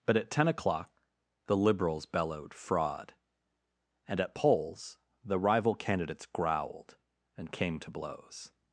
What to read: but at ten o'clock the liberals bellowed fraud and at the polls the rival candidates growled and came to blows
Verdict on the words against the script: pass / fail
fail